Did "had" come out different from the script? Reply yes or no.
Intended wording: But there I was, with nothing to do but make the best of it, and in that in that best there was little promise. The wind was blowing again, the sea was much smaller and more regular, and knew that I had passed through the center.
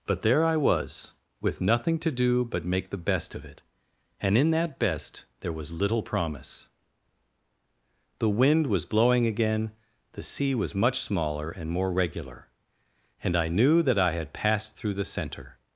no